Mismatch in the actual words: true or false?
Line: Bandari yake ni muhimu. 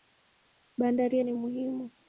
true